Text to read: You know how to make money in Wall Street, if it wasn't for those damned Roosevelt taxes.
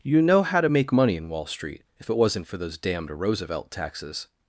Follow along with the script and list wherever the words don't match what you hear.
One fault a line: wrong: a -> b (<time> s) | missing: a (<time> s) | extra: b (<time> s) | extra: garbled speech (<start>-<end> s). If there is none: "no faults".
no faults